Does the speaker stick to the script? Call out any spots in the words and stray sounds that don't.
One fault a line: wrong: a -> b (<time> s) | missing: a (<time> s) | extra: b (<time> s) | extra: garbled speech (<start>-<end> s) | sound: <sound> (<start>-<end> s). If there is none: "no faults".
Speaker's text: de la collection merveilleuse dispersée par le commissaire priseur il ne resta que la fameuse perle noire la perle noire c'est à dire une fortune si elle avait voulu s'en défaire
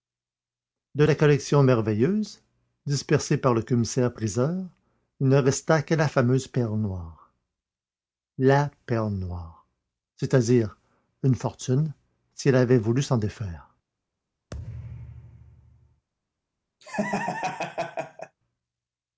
sound: thud (14.5-16.1 s)
sound: laugh (16.8-18.4 s)